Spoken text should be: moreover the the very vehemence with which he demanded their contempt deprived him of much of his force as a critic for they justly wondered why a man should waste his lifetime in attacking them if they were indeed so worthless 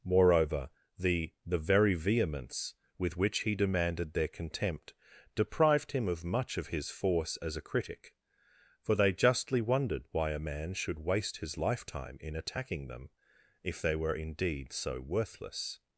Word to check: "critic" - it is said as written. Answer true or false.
true